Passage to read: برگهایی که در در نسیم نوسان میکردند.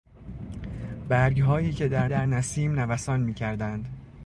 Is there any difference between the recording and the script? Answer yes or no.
no